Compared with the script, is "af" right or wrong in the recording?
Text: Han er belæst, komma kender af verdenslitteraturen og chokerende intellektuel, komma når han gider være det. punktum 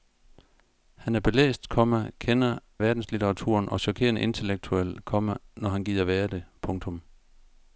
wrong